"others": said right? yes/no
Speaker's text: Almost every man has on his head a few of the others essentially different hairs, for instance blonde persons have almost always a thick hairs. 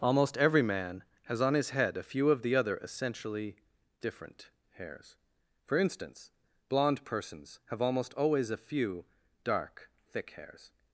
no